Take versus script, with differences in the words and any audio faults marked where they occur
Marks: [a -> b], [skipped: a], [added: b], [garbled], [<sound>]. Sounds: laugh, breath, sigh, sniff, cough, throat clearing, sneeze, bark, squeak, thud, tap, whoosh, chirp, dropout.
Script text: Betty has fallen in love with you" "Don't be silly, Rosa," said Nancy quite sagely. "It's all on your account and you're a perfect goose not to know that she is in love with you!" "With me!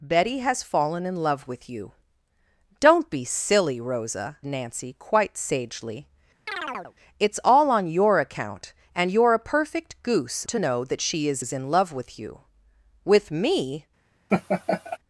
Betty has fallen in love with you" "Don't be silly, Rosa," [skipped: said] Nancy quite sagely. [chirp] "It's all on your account and you're a perfect goose [skipped: not] to know that she is [added: is] in love with you!" "With me! [laugh]